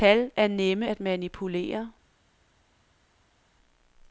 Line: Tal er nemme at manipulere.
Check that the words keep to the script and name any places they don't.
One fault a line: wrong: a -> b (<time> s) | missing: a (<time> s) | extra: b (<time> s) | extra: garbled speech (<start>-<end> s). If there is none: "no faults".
no faults